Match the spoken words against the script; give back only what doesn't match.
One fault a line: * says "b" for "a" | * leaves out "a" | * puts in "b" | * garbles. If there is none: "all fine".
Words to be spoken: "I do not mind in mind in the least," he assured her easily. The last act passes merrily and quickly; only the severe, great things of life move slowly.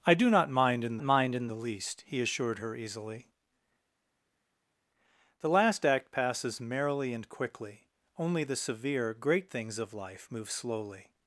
all fine